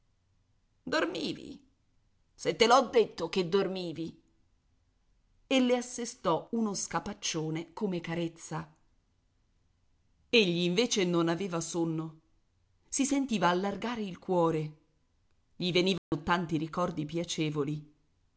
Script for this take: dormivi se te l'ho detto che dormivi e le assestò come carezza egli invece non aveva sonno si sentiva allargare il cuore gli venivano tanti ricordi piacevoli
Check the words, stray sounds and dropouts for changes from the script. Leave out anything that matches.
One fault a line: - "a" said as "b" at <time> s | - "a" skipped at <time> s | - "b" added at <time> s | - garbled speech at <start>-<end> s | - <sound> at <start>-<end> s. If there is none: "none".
- "uno scapaccione" added at 6.5 s
- dropout at 16.0-16.1 s